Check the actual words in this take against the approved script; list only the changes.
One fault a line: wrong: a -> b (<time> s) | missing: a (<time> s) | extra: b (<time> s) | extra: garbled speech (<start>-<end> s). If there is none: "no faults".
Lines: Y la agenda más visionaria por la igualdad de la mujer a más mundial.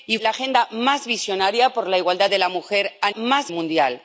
no faults